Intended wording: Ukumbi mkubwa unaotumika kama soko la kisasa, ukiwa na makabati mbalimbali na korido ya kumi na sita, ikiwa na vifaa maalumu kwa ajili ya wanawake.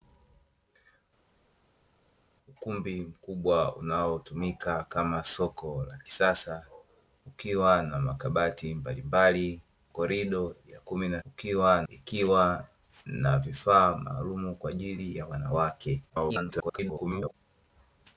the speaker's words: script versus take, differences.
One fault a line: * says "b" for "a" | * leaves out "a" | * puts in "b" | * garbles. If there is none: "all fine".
* leaves out "na"
* says "ukiwa" for "sita"
* garbles